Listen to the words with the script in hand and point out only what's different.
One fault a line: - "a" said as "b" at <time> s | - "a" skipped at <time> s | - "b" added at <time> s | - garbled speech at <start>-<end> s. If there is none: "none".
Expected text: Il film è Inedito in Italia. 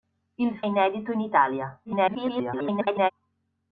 - "film è" skipped at 0.6 s
- garbled speech at 1.8-3.1 s